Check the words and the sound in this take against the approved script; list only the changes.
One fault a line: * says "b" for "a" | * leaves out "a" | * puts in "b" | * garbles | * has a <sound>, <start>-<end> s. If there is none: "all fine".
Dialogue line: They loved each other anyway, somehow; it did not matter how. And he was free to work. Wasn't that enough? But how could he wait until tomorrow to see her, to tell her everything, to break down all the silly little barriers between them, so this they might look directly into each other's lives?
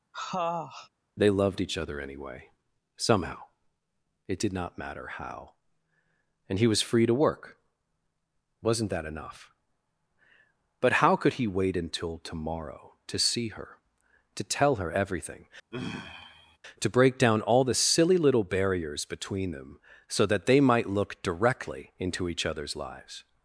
* has a sniff, 0.1-0.9 s
* has a sigh, 15.7-16.6 s
* says "that" for "this"